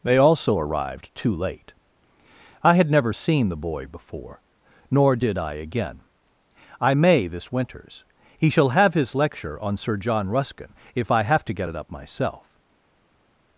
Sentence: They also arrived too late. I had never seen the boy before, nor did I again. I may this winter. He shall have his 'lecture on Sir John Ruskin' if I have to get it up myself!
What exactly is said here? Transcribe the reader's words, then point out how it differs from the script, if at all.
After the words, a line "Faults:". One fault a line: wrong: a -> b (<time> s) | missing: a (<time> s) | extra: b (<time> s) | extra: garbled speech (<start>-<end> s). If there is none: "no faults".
They also arrived too late. I had never seen the boy before, nor did I again. I may this winters. He shall have his 'lecture on Sir John Ruskin' if I have to get it up myself!
Faults:
wrong: winter -> winters (7.5 s)